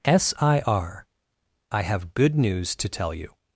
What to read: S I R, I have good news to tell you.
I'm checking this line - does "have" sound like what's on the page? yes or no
yes